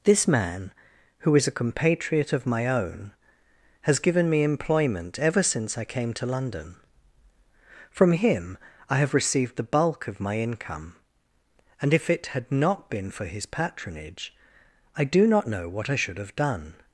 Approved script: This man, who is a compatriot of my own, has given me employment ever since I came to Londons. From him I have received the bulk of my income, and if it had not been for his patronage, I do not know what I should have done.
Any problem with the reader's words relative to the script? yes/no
yes